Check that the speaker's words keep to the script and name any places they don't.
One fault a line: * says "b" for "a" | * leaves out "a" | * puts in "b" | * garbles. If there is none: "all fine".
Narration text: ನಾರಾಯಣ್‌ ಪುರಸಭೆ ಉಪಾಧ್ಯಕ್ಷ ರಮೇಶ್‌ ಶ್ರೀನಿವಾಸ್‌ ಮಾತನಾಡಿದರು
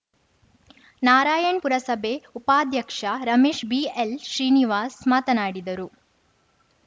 * puts in "ಬಿಎಲ್"